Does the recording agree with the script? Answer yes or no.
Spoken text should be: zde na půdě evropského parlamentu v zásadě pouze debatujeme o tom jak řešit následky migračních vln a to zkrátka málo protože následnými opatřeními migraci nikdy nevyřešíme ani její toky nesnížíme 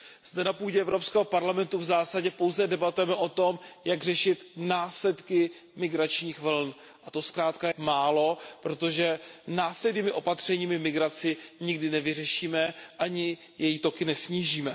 yes